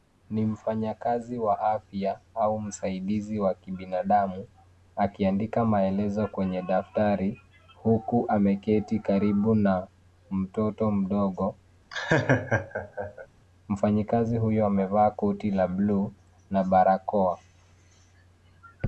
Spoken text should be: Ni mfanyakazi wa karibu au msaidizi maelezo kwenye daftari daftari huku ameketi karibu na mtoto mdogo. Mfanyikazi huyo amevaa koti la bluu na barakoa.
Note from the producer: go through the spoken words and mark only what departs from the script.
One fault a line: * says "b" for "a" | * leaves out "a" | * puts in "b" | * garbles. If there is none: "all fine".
* says "afya" for "karibu"
* puts in "wa kibinadamu akiandika"
* leaves out "daftari"